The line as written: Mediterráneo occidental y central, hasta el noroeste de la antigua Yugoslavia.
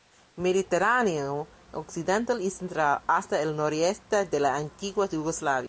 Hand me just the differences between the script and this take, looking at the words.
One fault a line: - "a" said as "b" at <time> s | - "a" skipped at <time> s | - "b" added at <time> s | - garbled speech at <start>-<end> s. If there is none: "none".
none